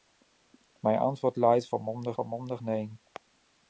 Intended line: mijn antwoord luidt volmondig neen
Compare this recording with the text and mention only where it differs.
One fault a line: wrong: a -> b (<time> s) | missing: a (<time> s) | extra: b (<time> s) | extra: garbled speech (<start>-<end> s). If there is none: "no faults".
extra: volmondig (2.1 s)